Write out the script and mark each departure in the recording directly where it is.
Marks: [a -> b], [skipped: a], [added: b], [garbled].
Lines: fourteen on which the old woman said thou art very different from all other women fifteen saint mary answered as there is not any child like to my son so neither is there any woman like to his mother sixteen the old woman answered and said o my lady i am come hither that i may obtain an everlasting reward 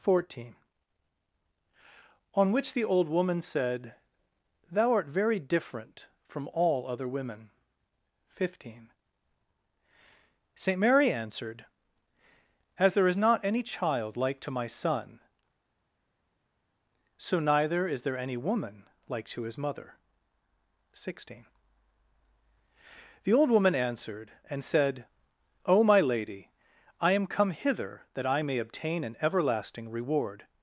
fourteen on which the old woman said thou art very different from all other women fifteen saint mary answered as there is not any child like to my son so neither is there any woman like to his mother sixteen the old woman answered and said o my lady i am come hither that i may obtain an everlasting reward